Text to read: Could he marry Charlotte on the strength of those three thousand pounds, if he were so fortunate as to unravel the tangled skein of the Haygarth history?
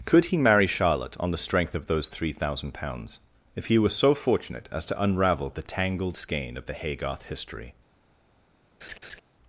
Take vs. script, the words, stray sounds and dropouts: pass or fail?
fail